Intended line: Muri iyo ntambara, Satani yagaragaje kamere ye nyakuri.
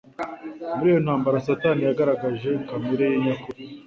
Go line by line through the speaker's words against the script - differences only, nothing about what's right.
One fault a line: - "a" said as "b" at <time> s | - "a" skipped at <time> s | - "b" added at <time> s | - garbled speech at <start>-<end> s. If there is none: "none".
none